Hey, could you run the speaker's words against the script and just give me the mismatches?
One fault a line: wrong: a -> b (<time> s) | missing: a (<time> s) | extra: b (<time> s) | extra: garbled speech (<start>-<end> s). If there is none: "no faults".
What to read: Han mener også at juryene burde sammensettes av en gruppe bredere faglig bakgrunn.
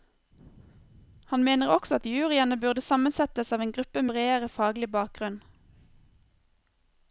no faults